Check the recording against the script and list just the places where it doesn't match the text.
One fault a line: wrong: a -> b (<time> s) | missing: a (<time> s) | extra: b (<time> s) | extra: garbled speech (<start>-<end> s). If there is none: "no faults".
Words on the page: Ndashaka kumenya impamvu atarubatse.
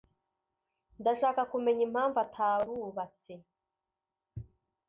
no faults